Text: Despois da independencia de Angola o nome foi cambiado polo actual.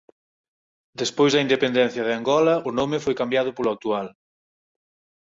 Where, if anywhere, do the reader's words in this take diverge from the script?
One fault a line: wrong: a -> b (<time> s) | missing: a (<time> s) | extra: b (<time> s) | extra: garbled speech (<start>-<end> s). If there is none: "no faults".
no faults